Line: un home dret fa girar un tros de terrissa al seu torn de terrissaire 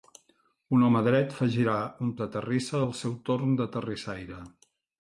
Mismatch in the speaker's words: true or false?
true